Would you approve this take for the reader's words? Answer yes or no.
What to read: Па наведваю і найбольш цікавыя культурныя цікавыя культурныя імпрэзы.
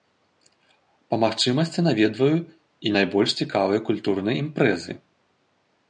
no